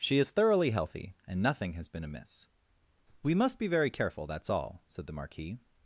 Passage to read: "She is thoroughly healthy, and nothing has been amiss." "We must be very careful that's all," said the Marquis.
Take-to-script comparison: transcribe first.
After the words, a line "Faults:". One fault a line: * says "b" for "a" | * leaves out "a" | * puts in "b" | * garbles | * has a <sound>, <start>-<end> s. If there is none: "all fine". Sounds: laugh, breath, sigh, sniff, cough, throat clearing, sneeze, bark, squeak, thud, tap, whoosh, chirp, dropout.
"She is thoroughly healthy, and nothing has been amiss." "We must be very careful that's all," said the Marquis.
Faults:
all fine